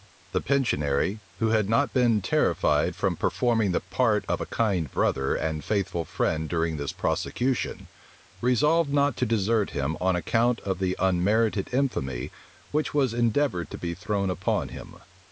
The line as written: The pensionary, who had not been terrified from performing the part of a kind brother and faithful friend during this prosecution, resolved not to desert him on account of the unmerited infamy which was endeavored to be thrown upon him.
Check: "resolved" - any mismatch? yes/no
no